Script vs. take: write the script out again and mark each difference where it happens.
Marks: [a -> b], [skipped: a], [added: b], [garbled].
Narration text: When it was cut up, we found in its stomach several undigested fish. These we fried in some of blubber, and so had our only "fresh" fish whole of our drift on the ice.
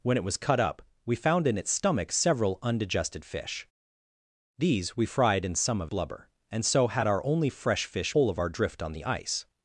When it was cut up, we found in its stomach several undigested fish. These we fried in some of blubber, and so had our only "fresh" fish whole of our drift on the ice.